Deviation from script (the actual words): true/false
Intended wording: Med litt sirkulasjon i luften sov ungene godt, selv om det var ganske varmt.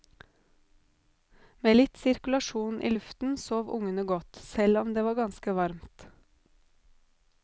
false